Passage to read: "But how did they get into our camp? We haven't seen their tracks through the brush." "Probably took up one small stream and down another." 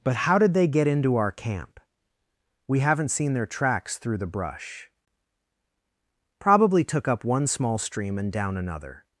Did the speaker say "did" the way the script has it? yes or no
yes